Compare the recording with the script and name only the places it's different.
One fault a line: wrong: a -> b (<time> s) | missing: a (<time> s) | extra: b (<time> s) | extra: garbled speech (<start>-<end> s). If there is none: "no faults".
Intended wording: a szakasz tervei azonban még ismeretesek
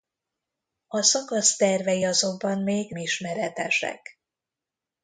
no faults